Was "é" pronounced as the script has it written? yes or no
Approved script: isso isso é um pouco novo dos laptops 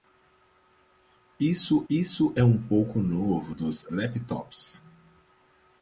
yes